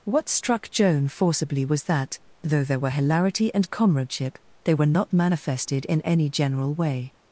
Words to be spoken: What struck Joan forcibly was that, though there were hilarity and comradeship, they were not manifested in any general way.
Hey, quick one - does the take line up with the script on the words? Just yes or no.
yes